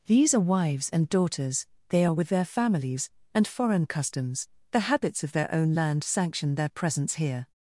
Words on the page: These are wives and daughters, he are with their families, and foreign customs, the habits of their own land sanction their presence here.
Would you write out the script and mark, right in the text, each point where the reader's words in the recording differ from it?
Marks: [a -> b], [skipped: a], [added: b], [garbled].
These are wives and daughters, [he -> they] are with their families, and foreign customs, the habits of their own land sanction their presence here.